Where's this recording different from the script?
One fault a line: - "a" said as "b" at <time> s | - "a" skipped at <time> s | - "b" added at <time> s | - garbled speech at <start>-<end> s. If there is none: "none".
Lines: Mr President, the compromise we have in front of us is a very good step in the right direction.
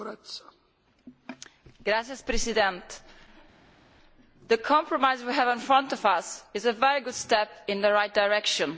none